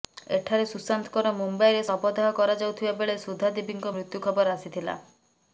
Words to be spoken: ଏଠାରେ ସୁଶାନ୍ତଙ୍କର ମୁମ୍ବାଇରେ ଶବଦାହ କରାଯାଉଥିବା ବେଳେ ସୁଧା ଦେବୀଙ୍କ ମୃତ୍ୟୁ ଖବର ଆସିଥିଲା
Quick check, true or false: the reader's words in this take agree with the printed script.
true